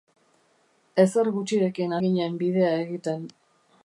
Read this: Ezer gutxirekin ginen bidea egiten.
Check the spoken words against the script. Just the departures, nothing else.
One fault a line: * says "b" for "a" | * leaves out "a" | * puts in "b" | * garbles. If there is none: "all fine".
all fine